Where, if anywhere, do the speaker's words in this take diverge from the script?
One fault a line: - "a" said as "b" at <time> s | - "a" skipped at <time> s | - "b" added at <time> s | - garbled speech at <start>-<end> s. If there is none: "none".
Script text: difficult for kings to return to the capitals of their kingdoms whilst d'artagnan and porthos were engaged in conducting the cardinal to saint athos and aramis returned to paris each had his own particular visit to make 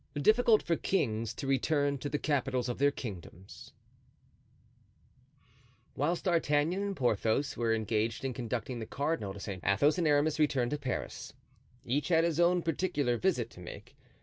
none